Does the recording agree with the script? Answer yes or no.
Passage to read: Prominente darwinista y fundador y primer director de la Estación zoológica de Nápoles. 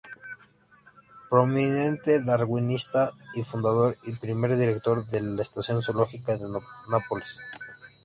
yes